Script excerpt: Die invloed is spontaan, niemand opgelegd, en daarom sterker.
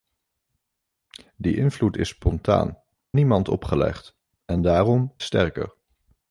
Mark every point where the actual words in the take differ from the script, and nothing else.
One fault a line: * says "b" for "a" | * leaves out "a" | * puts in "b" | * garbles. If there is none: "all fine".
all fine